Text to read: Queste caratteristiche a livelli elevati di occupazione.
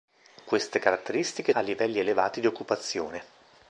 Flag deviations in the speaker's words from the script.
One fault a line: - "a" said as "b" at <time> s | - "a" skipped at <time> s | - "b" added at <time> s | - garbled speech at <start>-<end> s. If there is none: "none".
none